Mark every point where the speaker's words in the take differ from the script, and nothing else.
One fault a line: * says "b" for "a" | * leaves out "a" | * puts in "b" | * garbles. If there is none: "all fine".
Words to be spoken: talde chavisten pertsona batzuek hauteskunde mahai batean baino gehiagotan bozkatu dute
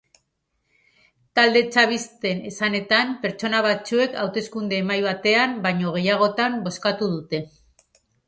* puts in "esanetan"